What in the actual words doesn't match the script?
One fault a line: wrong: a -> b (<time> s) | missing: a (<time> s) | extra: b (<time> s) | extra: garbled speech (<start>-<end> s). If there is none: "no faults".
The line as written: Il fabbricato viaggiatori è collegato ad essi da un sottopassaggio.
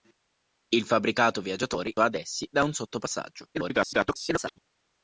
missing: è collegato (1.9 s)
extra: garbled speech (3.5-4.6 s)